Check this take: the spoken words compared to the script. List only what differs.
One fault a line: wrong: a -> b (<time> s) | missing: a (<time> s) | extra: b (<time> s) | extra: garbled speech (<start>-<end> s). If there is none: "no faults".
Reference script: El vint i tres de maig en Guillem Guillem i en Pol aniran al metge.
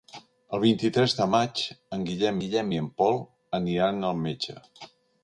no faults